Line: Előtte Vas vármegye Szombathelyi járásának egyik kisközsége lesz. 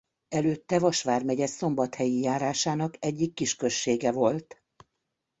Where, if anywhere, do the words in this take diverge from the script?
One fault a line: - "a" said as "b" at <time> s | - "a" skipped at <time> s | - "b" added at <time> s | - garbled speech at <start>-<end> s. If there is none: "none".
- "lesz" said as "volt" at 4.1 s